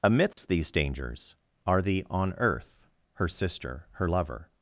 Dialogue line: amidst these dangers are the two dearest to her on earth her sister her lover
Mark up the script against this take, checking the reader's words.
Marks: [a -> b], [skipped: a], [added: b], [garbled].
amidst these dangers are the [skipped: two dearest to her] on earth her sister her lover